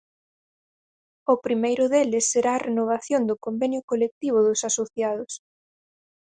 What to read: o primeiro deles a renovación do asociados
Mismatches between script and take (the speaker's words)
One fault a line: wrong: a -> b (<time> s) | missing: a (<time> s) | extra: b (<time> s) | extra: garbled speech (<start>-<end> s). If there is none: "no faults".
extra: será (2.3 s)
extra: convenio colectivo dos (3.5 s)